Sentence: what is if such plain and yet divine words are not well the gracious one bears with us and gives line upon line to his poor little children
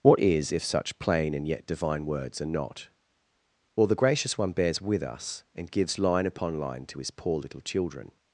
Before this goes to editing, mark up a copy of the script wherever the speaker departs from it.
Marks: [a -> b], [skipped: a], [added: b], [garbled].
what is if such plain and yet divine words are not well the gracious one bears with us and gives line upon line to his poor little children